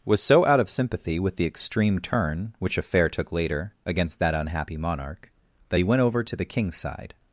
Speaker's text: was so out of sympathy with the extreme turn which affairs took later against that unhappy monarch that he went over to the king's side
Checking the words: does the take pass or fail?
fail